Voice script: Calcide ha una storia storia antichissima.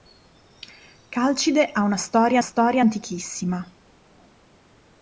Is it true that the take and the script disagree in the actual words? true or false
false